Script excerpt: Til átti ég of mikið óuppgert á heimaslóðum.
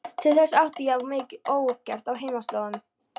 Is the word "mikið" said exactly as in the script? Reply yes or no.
yes